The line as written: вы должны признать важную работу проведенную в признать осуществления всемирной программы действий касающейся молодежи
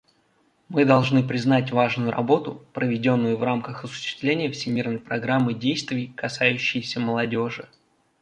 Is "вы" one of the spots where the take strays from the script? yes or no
yes